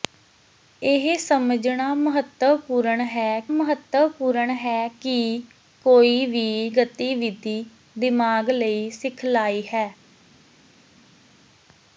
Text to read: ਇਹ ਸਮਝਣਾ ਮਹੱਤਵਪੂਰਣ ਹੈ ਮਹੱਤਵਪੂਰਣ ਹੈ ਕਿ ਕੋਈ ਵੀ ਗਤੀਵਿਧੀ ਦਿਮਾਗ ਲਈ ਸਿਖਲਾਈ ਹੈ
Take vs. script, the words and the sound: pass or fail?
pass